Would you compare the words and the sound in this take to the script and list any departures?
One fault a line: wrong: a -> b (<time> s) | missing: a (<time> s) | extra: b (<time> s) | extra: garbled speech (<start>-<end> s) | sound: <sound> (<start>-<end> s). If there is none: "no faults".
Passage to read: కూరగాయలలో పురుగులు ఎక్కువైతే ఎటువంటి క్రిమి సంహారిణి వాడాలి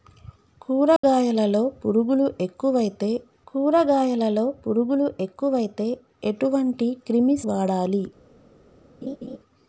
sound: dropout (1.0-1.0 s)
extra: కూరగాయలలో పురుగులు ఎక్కువైతే (3.5 s)
missing: సంహారిణి (7.4 s)
sound: laugh (9.0-9.4 s)